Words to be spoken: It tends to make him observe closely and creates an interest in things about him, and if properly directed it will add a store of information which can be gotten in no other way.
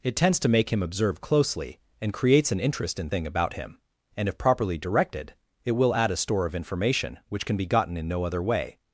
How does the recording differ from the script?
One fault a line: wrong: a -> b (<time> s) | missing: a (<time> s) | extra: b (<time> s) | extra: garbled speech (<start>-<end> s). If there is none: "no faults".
wrong: things -> thing (3.0 s)